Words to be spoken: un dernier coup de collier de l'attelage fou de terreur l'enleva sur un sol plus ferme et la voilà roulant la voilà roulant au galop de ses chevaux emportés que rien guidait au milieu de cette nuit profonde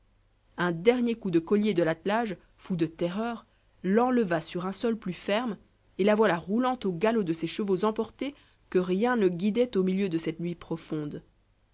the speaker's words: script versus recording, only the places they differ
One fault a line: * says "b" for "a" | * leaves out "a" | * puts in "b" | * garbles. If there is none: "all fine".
* leaves out "la voilà roulant"
* puts in "ne"